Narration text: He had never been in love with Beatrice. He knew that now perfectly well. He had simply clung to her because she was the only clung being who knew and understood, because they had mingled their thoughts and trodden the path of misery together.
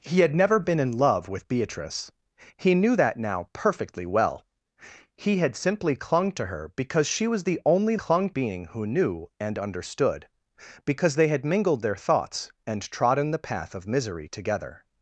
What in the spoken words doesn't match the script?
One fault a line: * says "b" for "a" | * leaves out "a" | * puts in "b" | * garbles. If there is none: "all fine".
all fine